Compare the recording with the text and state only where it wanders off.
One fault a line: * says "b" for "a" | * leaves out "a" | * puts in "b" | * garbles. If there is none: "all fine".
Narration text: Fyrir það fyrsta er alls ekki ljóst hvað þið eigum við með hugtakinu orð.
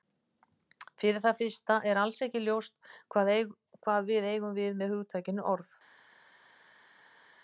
* says "við" for "þið"